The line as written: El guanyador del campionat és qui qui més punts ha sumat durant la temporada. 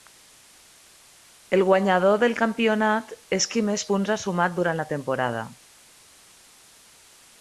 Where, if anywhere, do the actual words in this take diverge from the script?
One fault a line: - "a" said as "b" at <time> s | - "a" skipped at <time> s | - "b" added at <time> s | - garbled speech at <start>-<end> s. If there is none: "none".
- "qui" skipped at 3.6 s